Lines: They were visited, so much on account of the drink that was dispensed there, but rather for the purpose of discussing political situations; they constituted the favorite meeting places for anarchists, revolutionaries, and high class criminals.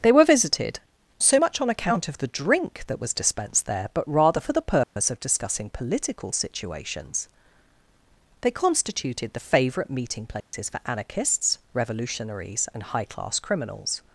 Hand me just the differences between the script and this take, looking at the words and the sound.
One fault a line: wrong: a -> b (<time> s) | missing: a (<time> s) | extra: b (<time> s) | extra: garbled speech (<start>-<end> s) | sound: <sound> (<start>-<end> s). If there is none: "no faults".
sound: dropout (4.8-5.0 s)
sound: dropout (10.4-10.5 s)